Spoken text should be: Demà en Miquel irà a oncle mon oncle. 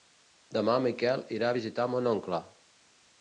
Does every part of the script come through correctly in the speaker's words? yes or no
no